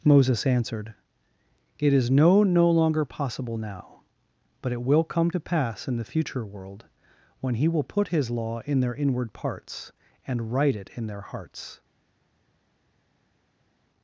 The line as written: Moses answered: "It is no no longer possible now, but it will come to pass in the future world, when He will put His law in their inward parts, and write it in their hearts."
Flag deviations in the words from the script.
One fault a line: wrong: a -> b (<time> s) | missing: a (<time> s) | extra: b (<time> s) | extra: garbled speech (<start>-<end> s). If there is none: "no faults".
no faults